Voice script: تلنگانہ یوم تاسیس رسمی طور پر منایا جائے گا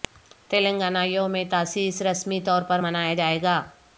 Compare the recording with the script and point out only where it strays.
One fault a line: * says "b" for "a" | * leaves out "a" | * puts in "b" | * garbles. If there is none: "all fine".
all fine